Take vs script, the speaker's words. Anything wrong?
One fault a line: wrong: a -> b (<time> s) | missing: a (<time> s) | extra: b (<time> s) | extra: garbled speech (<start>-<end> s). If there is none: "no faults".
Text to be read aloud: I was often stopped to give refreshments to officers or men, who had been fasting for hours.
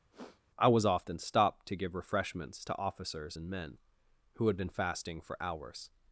wrong: or -> and (3.3 s)